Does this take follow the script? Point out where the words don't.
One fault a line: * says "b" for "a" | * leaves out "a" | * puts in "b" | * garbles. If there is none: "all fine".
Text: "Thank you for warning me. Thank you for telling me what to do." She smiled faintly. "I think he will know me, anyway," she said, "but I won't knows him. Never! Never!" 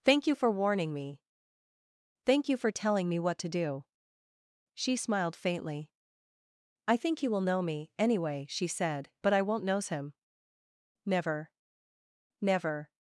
all fine